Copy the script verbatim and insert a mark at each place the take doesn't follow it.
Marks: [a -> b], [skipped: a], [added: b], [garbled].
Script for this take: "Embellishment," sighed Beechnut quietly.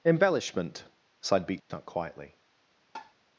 "Embellishment," sighed Beechnut quietly.